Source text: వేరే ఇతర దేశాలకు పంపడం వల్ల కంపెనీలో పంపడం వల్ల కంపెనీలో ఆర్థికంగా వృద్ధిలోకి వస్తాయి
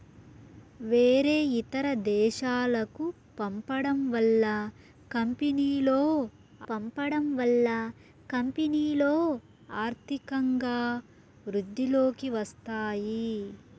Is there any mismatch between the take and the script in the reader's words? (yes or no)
no